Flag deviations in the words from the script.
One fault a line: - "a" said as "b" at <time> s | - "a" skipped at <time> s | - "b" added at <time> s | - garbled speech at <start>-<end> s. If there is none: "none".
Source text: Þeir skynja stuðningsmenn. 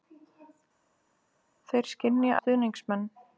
none